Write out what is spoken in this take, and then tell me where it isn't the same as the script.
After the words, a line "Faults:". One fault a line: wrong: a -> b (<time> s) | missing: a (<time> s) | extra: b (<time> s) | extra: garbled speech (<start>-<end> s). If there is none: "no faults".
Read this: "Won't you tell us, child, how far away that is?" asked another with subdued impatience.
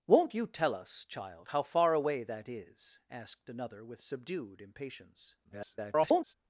"Won't you tell us, child, how far away that is?" asked another with subdued impatience. [garbled]
Faults:
extra: garbled speech (5.4-6.3 s)